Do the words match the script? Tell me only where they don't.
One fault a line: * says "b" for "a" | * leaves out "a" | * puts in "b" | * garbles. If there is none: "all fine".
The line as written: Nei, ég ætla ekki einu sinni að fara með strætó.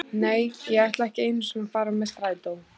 all fine